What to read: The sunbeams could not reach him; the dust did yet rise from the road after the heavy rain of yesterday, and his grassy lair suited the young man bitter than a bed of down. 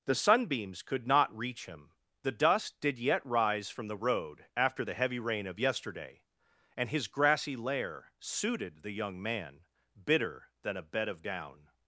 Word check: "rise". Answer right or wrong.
right